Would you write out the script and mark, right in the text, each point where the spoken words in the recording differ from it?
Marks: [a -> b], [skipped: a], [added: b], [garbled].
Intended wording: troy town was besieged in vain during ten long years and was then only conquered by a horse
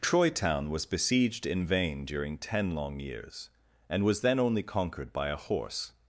troy town was besieged in vain during ten long years and was then only conquered by a horse